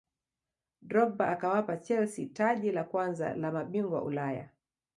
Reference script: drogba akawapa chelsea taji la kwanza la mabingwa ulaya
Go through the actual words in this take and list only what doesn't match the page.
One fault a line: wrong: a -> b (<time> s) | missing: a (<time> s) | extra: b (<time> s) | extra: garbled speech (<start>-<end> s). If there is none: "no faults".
no faults